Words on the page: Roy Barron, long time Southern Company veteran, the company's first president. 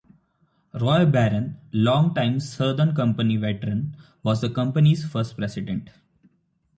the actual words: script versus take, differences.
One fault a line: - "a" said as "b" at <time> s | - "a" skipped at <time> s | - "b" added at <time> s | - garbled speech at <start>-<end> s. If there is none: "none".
- "was" added at 4.2 s